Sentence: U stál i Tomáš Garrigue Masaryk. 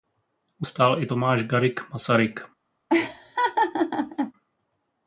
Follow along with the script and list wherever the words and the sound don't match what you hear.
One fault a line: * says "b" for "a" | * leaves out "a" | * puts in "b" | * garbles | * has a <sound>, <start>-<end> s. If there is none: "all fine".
* has a laugh, 2.9-4.3 s